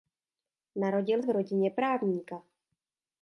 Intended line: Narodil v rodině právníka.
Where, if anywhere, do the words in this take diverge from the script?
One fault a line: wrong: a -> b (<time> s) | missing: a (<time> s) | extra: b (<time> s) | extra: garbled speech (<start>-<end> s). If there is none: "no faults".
no faults